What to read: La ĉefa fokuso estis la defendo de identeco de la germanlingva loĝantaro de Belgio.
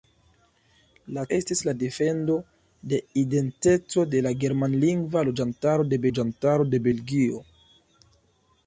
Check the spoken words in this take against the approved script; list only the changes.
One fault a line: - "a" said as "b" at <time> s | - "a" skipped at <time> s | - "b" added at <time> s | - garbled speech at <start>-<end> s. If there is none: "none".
- "ĉefa fokuso" skipped at 1.2 s
- "loĝantaro de" added at 6.1 s